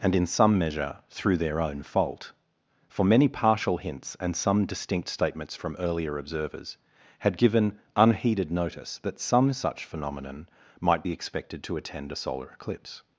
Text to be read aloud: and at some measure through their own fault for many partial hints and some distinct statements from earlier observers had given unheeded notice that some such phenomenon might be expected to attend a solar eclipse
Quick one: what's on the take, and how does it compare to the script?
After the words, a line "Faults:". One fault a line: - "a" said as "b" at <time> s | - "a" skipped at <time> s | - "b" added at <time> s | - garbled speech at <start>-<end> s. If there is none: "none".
and in some measure through their own fault for many partial hints and some distinct statements from earlier observers had given unheeded notice that some such phenomenon might be expected to attend a solar eclipse
Faults:
- "at" said as "in" at 0.1 s